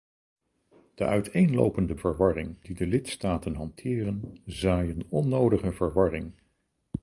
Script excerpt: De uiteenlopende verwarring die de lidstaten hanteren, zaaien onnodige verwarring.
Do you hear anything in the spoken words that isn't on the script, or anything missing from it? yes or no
no